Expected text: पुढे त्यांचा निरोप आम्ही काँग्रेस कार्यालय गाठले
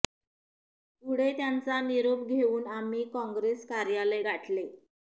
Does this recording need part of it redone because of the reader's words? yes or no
yes